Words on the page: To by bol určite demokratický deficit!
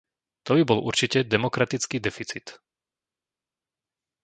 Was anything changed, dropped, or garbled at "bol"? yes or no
no